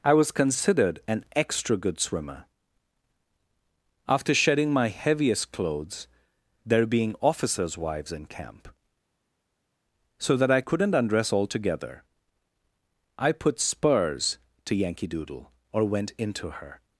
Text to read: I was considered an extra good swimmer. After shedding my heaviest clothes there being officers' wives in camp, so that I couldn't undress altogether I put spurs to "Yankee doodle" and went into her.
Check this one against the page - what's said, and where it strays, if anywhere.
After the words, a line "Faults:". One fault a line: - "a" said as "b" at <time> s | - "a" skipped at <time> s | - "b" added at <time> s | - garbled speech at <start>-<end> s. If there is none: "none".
I was considered an extra good swimmer. After shedding my heaviest clothes there being officers' wives in camp, so that I couldn't undress altogether I put spurs to "Yankee doodle" or went into her.
Faults:
- "and" said as "or" at 15.7 s